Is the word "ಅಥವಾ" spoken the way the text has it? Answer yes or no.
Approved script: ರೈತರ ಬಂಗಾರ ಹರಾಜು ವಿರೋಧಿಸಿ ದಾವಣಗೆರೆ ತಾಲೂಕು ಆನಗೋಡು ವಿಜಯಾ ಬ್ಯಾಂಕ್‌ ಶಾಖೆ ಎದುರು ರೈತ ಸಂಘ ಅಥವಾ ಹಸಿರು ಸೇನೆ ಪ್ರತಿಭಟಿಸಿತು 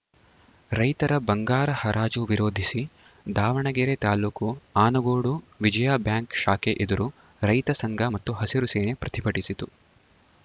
no